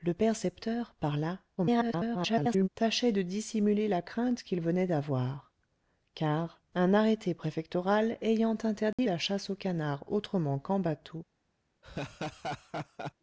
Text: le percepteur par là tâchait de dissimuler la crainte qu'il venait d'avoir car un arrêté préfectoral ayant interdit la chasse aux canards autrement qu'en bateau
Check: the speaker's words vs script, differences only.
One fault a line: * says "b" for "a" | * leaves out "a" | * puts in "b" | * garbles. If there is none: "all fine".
* garbles